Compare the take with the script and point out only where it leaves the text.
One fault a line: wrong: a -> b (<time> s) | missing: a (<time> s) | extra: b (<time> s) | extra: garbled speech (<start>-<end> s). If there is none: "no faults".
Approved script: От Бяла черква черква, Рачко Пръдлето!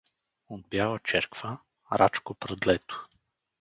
missing: черква (1.6 s)